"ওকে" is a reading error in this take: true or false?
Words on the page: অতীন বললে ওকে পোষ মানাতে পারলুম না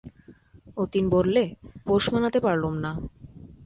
true